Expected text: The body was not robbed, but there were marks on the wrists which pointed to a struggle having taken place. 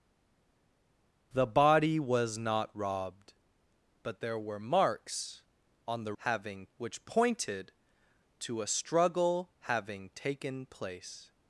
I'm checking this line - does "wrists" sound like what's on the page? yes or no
no